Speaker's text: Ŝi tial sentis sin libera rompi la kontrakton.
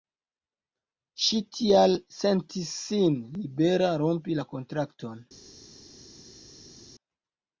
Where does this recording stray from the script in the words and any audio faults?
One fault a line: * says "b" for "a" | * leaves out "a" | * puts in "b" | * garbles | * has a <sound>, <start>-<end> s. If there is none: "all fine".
all fine